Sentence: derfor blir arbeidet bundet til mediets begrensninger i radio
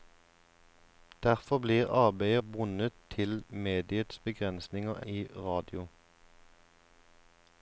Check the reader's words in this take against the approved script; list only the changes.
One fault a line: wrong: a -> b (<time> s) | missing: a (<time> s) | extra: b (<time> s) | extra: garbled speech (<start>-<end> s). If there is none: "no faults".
no faults